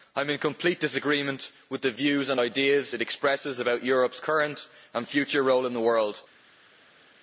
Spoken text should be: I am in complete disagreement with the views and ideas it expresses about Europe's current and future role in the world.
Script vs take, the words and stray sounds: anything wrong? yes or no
no